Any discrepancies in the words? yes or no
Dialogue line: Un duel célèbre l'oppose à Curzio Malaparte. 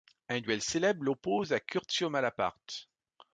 no